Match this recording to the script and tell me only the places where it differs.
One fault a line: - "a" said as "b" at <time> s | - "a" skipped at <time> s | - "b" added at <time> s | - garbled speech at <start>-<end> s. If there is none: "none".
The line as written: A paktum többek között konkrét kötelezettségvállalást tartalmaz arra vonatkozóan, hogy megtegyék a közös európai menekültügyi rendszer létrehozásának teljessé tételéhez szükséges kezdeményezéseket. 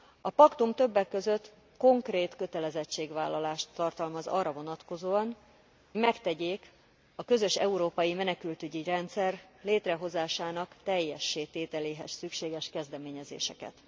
- "hogy" skipped at 5.3 s